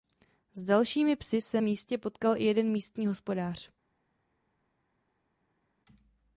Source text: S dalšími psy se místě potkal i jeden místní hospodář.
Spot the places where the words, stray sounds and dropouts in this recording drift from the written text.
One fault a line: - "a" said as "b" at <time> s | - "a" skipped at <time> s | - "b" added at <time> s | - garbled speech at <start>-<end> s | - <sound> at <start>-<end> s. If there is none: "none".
none